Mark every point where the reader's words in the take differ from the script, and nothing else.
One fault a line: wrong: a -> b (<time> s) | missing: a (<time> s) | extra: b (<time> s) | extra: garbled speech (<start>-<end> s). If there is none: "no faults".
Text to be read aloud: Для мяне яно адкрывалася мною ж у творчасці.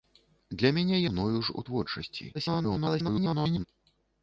missing: яно адкрывалася (1.0 s)
extra: garbled speech (2.3-3.7 s)